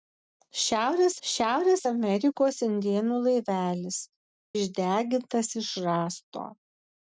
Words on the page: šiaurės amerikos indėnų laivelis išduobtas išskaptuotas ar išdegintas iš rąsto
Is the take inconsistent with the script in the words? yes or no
yes